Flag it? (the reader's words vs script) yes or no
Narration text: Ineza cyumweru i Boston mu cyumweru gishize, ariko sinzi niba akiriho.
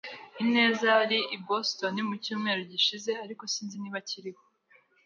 yes